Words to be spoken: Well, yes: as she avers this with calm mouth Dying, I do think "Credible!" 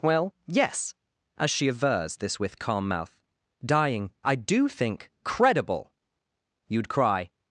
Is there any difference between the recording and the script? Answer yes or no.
yes